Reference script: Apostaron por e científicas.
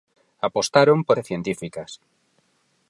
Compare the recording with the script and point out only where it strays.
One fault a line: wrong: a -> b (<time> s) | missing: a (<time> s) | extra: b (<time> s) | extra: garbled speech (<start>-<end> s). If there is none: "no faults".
no faults